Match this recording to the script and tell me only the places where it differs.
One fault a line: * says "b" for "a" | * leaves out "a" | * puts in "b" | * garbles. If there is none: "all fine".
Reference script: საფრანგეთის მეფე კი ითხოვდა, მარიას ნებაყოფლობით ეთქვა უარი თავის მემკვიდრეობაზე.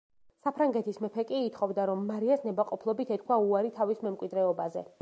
* puts in "რომ"